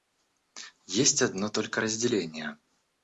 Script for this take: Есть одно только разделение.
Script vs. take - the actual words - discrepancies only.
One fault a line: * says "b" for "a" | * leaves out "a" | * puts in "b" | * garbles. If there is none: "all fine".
all fine